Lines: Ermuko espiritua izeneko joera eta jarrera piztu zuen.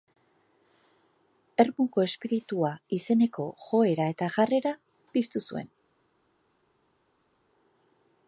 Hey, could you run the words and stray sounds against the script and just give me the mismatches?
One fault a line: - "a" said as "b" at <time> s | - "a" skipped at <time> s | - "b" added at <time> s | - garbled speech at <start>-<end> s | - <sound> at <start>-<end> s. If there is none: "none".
none